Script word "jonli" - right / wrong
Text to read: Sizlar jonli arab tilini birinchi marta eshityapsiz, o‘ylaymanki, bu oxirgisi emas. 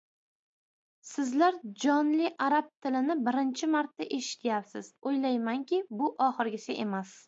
right